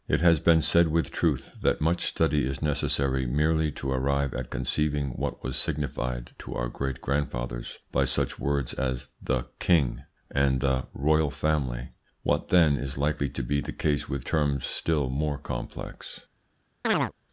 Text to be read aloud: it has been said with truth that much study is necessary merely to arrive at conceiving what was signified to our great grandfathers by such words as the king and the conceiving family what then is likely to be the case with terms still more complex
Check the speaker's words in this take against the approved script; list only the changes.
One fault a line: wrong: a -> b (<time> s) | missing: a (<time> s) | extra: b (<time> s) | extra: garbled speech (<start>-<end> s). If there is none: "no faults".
wrong: conceiving -> royal (10.9 s)